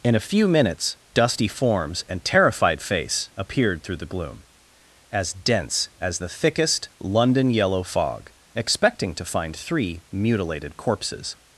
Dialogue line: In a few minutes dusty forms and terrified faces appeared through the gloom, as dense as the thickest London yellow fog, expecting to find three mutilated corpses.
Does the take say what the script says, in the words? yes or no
no